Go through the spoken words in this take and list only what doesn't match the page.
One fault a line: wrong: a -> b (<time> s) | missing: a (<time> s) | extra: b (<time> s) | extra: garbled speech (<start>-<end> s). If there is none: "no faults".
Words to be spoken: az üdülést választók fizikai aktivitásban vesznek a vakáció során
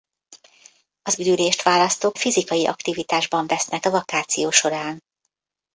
no faults